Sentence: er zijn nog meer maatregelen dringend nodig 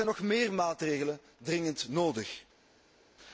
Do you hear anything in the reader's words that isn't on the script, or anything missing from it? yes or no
no